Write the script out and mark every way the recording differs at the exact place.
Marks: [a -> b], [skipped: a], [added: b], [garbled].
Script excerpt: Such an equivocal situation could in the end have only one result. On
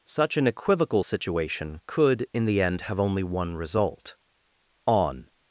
Such an equivocal situation could in the end have only one result. On